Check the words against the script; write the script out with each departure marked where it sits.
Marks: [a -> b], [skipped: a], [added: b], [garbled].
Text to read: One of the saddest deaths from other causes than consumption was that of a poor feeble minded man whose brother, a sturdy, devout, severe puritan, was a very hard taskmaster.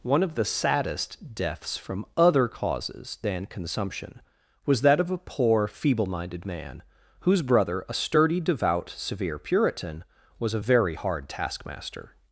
One of the saddest deaths from other causes than consumption was that of a poor feeble minded man whose brother, a sturdy, devout, severe puritan, was a very hard taskmaster.